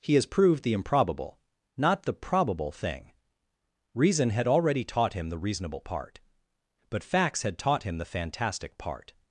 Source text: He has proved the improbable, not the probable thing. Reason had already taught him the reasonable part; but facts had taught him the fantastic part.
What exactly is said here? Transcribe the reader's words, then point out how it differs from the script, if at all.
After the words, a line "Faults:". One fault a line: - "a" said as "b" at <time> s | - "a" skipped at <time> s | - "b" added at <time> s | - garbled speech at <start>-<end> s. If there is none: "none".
He has proved the improbable, not the probable thing. Reason had already taught him the reasonable part; but facts had taught him the fantastic part.
Faults:
none